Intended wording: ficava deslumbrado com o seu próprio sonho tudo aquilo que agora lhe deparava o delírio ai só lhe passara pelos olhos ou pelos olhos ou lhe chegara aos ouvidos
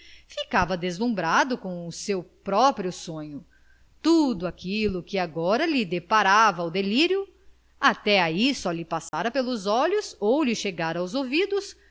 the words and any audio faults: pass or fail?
fail